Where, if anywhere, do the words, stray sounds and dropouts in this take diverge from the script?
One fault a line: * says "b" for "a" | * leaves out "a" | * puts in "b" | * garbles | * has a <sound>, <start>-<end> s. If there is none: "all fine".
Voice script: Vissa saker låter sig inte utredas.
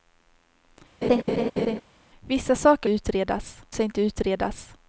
* has a laugh, 1.0-1.8 s
* says "utredas" for "låter"